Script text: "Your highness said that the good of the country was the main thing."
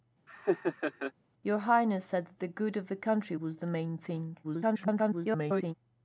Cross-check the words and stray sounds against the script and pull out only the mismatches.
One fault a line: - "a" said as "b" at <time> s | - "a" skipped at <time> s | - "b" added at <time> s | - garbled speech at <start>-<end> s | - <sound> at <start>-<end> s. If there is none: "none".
- laugh at 0.3-1.1 s
- garbled speech at 4.4-5.7 s